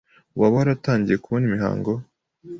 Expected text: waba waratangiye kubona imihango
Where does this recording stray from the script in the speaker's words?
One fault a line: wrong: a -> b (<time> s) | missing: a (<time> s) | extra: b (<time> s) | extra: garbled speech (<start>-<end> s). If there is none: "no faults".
no faults